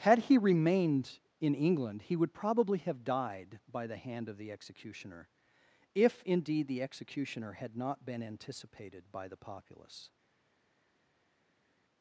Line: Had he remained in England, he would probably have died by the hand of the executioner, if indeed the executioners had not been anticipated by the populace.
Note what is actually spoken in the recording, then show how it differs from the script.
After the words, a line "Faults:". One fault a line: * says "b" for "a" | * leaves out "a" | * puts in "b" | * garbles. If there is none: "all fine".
Had he remained in England, he would probably have died by the hand of the executioner, if indeed the executioner had not been anticipated by the populace.
Faults:
* says "executioner" for "executioners"